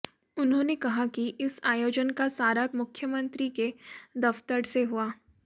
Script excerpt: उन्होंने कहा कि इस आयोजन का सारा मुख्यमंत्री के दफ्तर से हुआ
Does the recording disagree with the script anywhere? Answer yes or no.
no